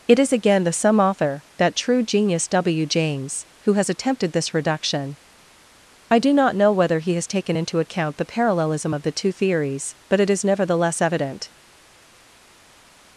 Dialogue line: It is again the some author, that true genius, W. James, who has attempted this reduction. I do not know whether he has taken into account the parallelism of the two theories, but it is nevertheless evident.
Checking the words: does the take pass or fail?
pass